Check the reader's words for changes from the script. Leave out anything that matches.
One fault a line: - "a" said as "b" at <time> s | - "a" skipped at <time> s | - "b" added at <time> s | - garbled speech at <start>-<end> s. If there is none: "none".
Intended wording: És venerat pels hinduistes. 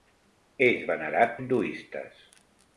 - "pels" skipped at 1.3 s